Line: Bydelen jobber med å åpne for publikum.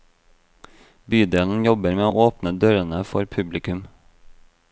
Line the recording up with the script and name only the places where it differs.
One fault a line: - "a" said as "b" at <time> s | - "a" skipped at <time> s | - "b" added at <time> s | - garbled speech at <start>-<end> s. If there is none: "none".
- "dørene" added at 2.6 s